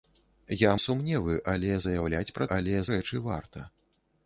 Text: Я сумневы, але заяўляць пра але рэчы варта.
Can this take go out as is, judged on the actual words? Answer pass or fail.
pass